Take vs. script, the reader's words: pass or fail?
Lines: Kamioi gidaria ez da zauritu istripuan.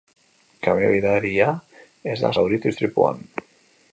pass